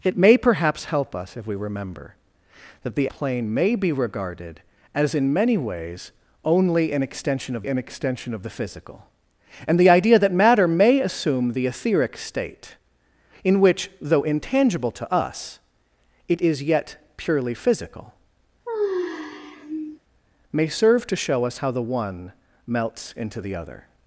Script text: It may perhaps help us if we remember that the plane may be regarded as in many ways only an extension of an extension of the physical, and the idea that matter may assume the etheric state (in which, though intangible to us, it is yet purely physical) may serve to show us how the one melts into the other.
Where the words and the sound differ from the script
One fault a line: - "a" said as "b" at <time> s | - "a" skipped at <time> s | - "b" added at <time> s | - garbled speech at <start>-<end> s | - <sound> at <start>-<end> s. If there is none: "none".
- sigh at 18.7-20.0 s